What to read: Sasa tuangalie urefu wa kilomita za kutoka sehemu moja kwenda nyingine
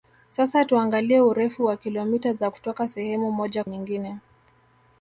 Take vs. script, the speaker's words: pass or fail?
fail